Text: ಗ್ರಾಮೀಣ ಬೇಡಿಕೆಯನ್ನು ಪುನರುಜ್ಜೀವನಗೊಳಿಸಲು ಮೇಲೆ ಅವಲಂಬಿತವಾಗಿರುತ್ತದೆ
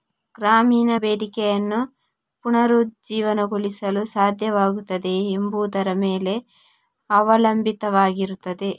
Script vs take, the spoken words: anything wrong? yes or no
yes